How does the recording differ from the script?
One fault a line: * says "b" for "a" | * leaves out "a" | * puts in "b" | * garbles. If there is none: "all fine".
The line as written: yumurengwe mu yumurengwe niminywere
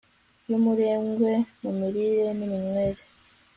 * says "mirire" for "yumurengwe"